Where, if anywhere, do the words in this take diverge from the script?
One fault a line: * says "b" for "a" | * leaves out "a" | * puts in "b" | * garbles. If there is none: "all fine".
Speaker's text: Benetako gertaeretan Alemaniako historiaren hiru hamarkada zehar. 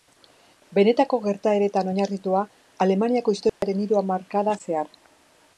* puts in "oinarritua"